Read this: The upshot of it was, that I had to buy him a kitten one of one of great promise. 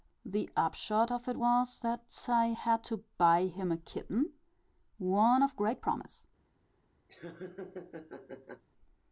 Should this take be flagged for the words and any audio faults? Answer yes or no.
yes